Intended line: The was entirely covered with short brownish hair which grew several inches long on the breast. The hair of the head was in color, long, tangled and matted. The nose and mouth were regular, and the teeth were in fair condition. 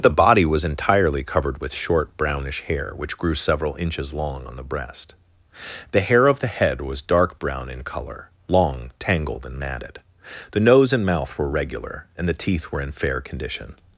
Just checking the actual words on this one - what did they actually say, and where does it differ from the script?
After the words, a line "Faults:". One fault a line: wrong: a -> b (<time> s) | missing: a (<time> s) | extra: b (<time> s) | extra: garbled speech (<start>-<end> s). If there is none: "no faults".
The body was entirely covered with short brownish hair which grew several inches long on the breast. The hair of the head was dark brown in color, long, tangled and matted. The nose and mouth were regular, and the teeth were in fair condition.
Faults:
extra: body (0.1 s)
extra: dark brown (7.0 s)